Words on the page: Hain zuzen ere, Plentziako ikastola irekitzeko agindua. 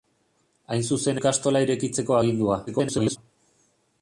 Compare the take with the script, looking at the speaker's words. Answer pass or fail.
fail